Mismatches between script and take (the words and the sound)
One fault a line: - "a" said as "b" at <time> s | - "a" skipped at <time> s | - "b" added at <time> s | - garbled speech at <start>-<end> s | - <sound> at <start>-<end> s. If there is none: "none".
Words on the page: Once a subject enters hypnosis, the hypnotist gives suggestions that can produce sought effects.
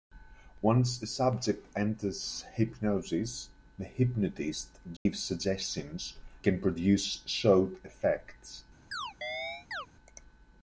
- dropout at 5.0-5.1 s
- "that" skipped at 6.2 s
- chirp at 8.9-9.9 s